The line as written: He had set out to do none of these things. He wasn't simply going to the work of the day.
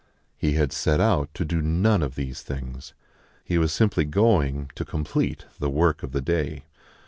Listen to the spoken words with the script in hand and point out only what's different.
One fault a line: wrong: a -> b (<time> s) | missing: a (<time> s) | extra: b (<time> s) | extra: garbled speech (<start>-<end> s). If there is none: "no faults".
wrong: wasn't -> was (3.6 s)
extra: complete (4.9 s)